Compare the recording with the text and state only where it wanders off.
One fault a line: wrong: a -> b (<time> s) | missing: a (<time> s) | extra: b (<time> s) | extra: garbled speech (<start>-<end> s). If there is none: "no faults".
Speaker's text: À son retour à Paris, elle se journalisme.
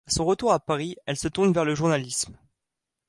extra: tourne vers le (1.3 s)